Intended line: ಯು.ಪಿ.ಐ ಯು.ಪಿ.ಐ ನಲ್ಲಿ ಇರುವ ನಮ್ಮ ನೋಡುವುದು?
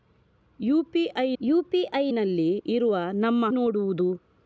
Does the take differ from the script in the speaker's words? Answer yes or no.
no